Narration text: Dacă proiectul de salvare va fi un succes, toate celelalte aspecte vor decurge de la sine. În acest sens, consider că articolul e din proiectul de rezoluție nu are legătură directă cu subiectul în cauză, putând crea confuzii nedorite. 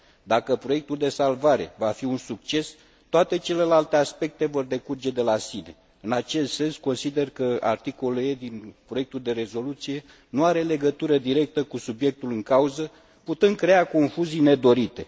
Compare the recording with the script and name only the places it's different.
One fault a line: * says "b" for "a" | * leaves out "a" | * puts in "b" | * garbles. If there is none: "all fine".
all fine